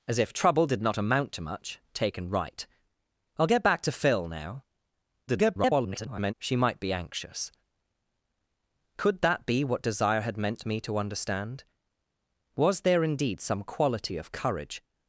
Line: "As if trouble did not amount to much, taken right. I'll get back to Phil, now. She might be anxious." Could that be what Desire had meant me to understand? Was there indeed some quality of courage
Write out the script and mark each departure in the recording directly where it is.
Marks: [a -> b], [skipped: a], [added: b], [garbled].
"As if trouble did not amount to much, taken right. I'll get back to Phil, now. [garbled] She might be anxious." Could that be what Desire had meant me to understand? Was there indeed some quality of courage